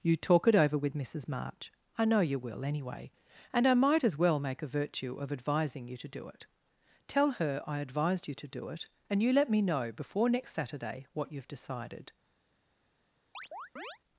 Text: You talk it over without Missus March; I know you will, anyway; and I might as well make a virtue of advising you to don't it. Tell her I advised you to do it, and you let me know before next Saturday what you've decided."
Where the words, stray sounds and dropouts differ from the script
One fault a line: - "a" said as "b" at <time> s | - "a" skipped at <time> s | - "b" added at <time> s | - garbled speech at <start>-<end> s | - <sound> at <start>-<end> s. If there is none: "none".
- "without" said as "with" at 0.8 s
- "don't" said as "do" at 6.1 s
- chirp at 13.3-14.0 s